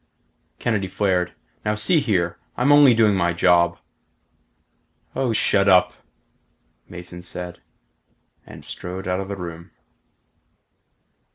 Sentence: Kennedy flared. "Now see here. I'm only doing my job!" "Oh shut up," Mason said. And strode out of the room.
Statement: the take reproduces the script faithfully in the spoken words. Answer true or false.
true